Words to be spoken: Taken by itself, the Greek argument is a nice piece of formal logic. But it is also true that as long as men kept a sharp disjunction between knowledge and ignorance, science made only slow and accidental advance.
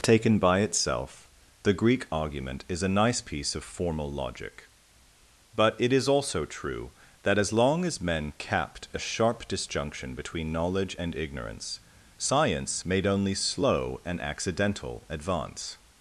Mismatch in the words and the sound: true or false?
true